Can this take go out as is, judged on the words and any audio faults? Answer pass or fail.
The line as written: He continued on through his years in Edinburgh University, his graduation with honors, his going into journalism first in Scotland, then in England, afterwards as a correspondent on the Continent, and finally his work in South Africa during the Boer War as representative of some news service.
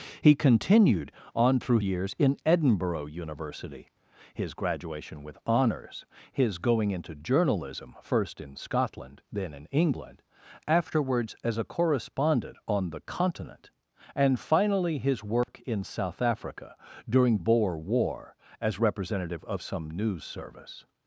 fail